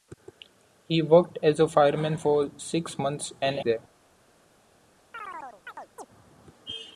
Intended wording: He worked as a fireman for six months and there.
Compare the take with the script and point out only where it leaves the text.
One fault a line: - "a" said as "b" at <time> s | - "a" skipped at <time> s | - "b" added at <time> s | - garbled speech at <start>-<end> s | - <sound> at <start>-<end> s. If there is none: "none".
- chirp at 5.1-6.1 s